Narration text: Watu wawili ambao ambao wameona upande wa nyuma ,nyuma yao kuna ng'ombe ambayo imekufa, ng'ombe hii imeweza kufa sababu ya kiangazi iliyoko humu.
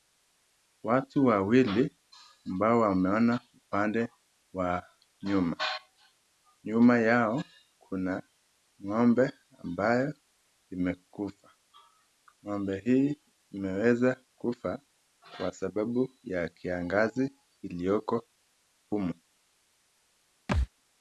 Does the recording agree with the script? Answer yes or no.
no